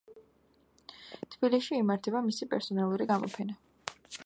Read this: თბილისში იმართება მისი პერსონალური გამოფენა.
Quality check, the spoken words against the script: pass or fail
pass